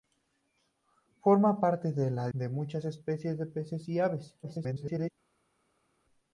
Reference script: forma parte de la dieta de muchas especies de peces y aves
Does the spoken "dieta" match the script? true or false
false